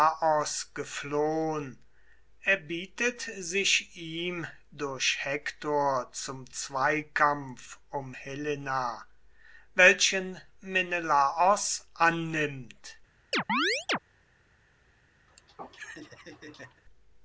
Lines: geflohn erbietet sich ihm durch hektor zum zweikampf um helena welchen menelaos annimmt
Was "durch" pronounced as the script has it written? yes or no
yes